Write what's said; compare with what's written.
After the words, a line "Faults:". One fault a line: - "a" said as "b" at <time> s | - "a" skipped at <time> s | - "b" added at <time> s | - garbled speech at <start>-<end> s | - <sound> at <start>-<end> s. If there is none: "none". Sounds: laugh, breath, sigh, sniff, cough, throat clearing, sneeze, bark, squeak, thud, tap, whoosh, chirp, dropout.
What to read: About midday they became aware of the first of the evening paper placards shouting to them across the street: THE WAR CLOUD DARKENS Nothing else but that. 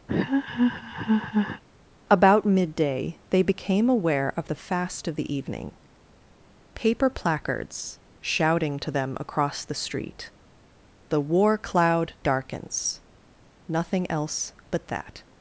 About midday they became aware of the fast of the evening paper placards shouting to them across the street: THE WAR CLOUD DARKENS Nothing else but that.
Faults:
- laugh at 0.1-1.6 s
- "first" said as "fast" at 4.5 s